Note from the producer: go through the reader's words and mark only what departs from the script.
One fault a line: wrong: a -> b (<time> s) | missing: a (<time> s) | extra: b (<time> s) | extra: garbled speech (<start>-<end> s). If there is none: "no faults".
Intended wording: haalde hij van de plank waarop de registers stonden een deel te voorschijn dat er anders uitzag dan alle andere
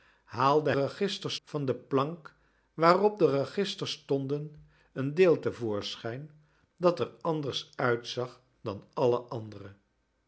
wrong: hij -> registers (0.7 s)